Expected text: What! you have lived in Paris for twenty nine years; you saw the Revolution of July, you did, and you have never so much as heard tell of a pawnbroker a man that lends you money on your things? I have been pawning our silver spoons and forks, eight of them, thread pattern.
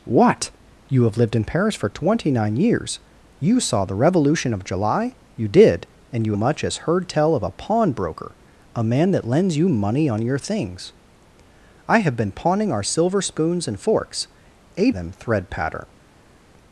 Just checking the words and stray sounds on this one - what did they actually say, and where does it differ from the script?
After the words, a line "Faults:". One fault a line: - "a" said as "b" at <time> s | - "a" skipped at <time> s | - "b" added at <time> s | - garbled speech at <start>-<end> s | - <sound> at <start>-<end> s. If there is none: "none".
What! you have lived in Paris for twenty nine years; you saw the Revolution of July, you did, and you much as heard tell of a pawnbroker a man that lends you money on your things? I have been pawning our silver spoons and forks, eight them, thread pattern.
Faults:
- "have never so" skipped at 6.3 s
- "of" skipped at 14.9 s